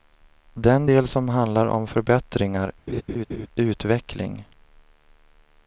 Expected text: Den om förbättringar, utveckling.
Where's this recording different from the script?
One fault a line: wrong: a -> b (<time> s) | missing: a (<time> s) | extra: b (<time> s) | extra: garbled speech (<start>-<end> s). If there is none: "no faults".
extra: del som handlar (0.8 s)